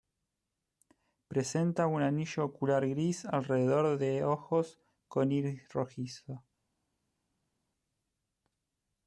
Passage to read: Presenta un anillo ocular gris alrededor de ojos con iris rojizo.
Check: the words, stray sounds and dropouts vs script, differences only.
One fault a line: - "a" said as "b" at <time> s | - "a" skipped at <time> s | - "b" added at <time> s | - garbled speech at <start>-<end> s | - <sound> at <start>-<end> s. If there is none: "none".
none